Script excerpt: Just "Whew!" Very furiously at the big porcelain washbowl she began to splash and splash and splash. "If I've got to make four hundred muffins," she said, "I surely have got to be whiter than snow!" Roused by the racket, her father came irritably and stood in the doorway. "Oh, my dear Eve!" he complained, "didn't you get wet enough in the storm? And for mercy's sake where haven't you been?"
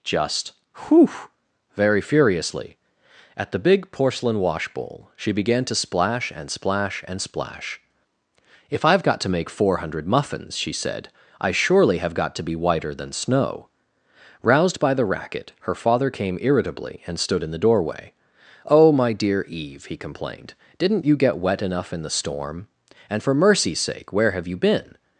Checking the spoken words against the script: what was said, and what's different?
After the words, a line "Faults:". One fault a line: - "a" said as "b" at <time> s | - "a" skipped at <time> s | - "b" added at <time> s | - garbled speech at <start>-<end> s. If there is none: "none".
Just "Whew!" Very furiously at the big porcelain washbowl she began to splash and splash and splash. "If I've got to make four hundred muffins," she said, "I surely have got to be whiter than snow!" Roused by the racket, her father came irritably and stood in the doorway. "Oh, my dear Eve!" he complained, "didn't you get wet enough in the storm? And for mercy's sake where have you been?"
Faults:
- "haven't" said as "have" at 24.3 s